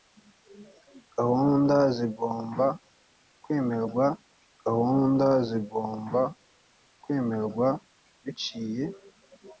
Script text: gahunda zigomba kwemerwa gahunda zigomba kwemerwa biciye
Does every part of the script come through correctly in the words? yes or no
yes